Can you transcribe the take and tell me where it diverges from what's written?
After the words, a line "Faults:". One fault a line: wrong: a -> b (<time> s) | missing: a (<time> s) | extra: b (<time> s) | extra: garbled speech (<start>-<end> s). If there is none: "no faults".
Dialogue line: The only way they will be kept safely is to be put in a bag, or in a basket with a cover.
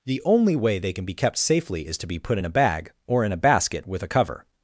The only way they can be kept safely is to be put in a bag, or in a basket with a cover.
Faults:
wrong: will -> can (0.9 s)